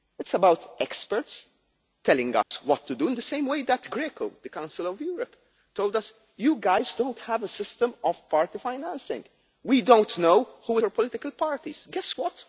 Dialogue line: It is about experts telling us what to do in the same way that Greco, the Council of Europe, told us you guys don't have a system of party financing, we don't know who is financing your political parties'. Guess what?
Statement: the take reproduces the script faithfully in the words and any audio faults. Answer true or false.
false